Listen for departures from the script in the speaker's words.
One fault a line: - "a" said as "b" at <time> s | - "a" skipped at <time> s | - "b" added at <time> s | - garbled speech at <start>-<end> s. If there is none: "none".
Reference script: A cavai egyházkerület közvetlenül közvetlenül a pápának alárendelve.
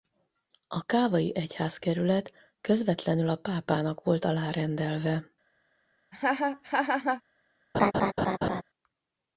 - "közvetlenül" skipped at 3.3 s
- "volt" added at 4.0 s